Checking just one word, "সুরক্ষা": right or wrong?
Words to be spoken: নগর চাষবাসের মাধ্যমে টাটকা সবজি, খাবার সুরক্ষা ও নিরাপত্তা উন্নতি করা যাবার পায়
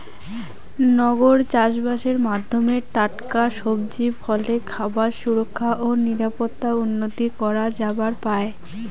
right